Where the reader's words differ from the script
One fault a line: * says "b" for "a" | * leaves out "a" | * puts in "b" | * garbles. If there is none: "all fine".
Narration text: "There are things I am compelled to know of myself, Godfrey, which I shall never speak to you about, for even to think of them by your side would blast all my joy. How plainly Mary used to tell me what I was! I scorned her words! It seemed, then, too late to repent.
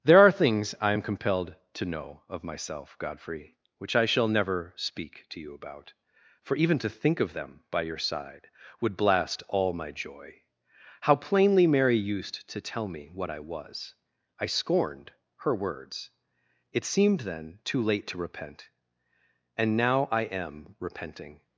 * puts in "And now I am repenting"